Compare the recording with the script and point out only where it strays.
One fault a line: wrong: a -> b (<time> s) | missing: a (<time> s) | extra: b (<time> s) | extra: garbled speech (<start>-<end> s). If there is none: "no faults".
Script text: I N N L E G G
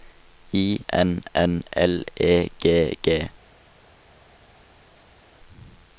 no faults